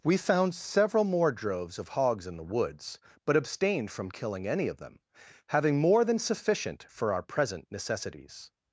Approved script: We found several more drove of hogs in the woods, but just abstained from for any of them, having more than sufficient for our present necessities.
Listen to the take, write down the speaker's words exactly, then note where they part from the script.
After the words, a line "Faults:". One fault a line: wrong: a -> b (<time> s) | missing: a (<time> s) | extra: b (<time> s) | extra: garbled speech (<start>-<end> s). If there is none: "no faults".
We found several more droves of hogs in the woods, but abstained from killing any of them, having more than sufficient for our present necessities.
Faults:
wrong: drove -> droves (1.3 s)
missing: just (3.4 s)
wrong: for -> killing (4.1 s)